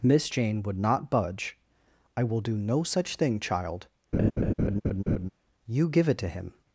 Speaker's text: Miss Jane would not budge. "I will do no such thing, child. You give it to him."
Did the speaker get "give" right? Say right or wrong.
right